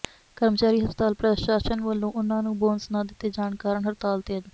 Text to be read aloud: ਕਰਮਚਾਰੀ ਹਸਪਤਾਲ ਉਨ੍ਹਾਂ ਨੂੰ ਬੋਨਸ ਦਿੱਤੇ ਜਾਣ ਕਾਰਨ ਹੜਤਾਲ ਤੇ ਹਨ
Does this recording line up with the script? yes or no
no